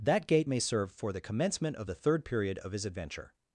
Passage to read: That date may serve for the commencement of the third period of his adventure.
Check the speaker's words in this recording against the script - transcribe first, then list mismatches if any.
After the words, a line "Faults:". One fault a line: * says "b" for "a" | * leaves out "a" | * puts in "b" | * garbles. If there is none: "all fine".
That gate may serve for the commencement of the third period of his adventure.
Faults:
* says "gate" for "date"